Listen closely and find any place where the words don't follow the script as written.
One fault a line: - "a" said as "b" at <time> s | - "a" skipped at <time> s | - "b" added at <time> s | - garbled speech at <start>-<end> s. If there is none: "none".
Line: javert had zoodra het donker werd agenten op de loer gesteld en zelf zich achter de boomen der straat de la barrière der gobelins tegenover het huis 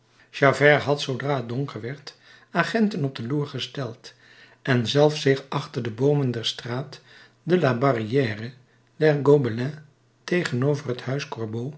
none